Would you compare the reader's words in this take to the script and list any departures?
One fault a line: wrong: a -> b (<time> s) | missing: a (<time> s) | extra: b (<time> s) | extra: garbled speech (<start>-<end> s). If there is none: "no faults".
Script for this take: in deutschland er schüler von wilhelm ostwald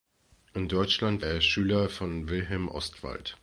no faults